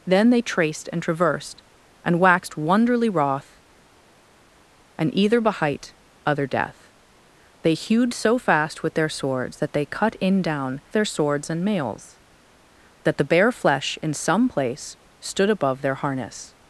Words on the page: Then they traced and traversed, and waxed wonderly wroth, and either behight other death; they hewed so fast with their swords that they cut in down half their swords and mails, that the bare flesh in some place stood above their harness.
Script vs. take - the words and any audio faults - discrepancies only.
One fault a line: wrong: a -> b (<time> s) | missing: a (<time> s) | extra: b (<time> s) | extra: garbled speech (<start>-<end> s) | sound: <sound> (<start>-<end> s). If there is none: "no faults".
missing: half (10.8 s)